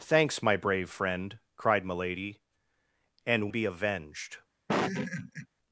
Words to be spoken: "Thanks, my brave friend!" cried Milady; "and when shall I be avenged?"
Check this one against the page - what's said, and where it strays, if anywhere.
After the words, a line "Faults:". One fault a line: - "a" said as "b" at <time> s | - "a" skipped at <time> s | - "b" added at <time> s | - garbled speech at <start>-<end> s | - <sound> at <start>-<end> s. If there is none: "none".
"Thanks, my brave friend!" cried Milady; "and be avenged?"
Faults:
- "when shall I" skipped at 3.5 s
- laugh at 4.7-5.5 s